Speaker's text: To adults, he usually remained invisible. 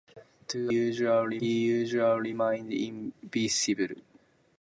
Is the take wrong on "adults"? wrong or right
wrong